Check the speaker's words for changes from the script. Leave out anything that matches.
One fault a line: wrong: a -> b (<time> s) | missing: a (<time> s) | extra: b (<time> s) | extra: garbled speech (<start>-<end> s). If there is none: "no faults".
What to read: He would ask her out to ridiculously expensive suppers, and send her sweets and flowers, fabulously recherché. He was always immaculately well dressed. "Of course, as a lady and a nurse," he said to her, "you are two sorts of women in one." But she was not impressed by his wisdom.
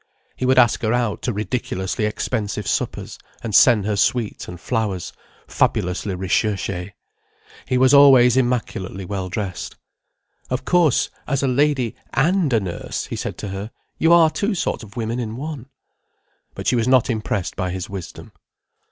no faults